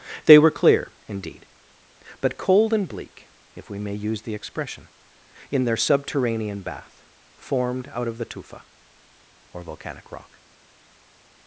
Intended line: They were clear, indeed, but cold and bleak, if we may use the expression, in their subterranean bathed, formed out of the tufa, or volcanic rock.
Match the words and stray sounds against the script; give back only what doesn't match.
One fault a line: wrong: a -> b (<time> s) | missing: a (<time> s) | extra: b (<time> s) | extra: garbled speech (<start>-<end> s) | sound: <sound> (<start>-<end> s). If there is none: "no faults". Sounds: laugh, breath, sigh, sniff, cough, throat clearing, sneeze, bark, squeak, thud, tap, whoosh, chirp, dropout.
wrong: bathed -> bath (6.6 s)